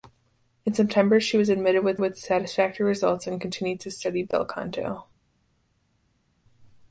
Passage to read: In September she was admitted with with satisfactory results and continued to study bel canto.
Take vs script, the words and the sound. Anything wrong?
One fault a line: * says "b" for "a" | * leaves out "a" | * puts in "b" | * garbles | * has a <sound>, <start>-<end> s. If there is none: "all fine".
all fine